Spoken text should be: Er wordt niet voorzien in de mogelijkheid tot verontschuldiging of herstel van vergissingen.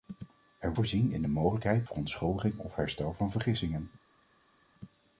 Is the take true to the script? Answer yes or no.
no